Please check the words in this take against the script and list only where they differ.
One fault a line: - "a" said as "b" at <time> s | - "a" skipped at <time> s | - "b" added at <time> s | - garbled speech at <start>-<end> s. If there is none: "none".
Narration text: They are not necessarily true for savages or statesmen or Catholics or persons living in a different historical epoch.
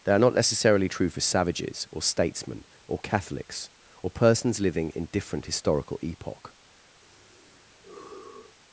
- "a" skipped at 5.1 s